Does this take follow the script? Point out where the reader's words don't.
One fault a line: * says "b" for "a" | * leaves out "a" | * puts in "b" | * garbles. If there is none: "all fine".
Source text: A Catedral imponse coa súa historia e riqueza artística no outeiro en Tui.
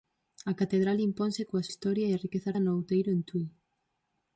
* leaves out "súa"
* leaves out "artística"